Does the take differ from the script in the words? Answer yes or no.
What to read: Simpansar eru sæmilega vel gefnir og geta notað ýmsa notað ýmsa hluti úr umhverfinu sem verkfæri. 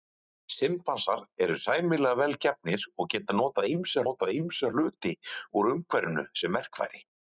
no